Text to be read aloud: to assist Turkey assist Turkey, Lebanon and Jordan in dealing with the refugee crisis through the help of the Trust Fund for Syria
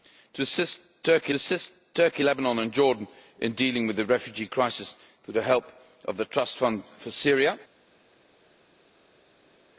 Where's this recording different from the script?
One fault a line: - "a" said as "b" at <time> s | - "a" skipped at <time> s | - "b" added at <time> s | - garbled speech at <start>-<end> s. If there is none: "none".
none